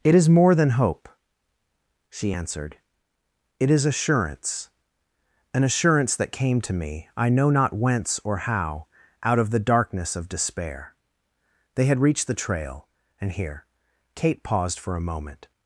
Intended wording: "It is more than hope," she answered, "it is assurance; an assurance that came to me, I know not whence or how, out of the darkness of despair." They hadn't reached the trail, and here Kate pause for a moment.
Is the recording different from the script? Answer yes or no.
yes